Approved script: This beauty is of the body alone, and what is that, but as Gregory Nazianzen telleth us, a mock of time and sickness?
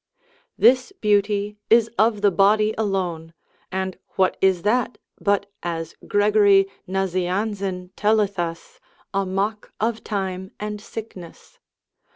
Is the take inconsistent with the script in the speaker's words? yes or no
no